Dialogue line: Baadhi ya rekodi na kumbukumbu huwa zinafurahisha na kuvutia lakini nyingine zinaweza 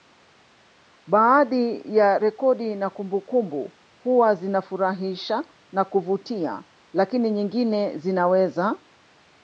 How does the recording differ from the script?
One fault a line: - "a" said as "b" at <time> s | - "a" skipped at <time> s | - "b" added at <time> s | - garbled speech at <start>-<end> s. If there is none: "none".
none